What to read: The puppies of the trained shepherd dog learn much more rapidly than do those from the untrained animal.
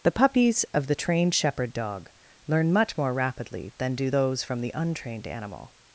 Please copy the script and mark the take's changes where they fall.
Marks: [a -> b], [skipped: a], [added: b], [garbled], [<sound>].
The puppies of the trained shepherd dog learn much more rapidly than do those from the untrained animal.